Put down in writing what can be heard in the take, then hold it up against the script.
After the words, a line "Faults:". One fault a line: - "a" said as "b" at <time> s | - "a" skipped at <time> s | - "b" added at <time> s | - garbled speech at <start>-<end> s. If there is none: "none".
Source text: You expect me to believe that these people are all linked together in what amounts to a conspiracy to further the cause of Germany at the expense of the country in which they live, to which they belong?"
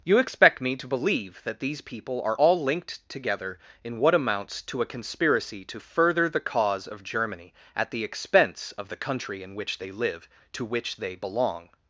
You expect me to believe that these people are all linked together in what amounts to a conspiracy to further the cause of Germany at the expense of the country in which they live, to which they belong?"
Faults:
none